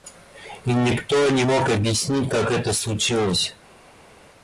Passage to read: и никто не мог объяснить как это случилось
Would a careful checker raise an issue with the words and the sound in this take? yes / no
no